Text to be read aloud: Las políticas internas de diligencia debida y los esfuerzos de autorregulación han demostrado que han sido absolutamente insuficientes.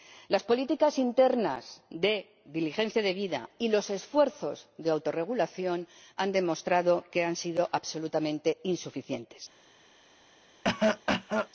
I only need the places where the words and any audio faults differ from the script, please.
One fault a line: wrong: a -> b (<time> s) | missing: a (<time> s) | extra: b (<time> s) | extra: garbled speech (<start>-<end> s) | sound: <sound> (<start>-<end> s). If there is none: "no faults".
sound: cough (10.6-11.5 s)